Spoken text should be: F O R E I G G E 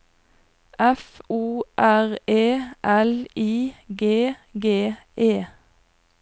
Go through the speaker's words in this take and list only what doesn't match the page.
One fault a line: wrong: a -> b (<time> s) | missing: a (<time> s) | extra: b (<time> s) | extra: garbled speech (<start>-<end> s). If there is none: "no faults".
extra: L (2.8 s)